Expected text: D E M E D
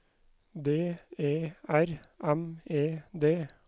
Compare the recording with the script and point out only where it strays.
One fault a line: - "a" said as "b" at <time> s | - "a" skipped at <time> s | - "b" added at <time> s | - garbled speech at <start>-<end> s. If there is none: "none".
- "R" added at 1.7 s